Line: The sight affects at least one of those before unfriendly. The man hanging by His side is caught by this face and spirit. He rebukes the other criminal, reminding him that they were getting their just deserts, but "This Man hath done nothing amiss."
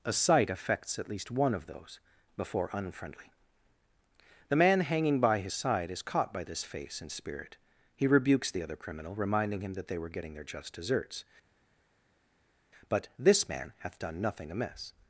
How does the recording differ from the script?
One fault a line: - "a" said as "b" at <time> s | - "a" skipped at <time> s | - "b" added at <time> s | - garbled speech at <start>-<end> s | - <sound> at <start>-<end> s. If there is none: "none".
- "The" said as "A" at 0.0 s